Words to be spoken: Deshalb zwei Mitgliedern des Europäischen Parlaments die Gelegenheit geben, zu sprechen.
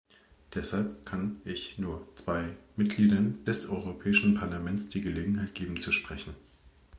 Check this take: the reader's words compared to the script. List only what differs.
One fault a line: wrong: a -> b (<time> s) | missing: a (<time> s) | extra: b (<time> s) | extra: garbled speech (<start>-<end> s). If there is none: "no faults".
extra: kann ich nur (1.0 s)